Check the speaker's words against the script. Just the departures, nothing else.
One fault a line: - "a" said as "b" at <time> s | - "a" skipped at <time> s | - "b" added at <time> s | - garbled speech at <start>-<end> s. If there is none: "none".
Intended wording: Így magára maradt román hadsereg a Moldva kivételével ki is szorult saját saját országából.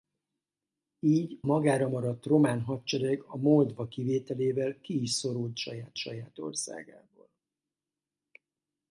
none